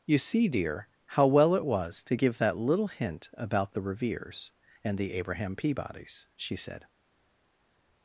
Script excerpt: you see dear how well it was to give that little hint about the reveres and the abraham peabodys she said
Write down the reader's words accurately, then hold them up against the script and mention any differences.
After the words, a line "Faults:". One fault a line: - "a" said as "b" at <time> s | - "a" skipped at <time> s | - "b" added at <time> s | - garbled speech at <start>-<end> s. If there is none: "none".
you see dear how well it was to give that little hint about the reveres and the abraham peabodys she said
Faults:
none